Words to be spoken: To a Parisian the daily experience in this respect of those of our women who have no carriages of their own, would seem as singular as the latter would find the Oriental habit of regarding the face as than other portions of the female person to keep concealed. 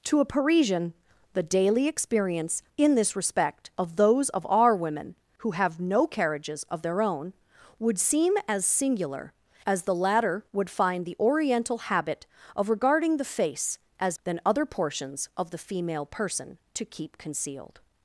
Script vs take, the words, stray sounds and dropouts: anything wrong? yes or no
no